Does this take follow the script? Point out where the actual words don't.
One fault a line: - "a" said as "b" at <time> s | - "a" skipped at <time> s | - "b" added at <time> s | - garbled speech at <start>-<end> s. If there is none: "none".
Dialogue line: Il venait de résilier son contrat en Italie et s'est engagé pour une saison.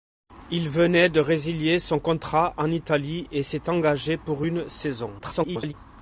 - garbled speech at 5.2-5.7 s